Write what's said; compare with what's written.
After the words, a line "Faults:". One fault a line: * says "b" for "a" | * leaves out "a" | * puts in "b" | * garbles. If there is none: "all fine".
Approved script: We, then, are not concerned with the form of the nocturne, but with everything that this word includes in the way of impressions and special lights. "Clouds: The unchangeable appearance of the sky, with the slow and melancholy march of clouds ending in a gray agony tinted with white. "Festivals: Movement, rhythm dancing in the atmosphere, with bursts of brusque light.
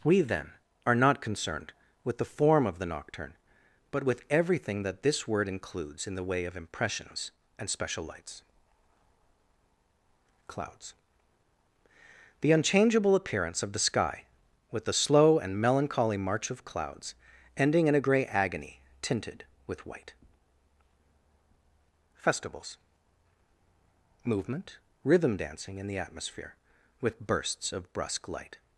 We, then, are not concerned with the form of the nocturne, but with everything that this word includes in the way of impressions and special lights. "Clouds: The unchangeable appearance of the sky, with the slow and melancholy march of clouds ending in a gray agony tinted with white. "Festivals: Movement, rhythm dancing in the atmosphere, with bursts of brusque light.
Faults:
all fine